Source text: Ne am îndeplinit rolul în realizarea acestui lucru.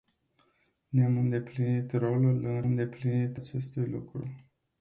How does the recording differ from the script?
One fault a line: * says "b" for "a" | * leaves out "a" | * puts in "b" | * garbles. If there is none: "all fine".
* says "îndeplinit" for "realizarea"